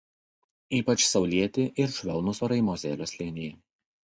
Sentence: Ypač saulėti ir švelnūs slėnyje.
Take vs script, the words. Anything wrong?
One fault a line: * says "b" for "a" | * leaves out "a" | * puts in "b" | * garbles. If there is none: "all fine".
* puts in "orai Mozelio"